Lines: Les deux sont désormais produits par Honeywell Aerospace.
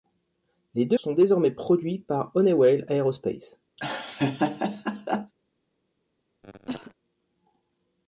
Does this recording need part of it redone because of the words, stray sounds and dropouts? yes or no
yes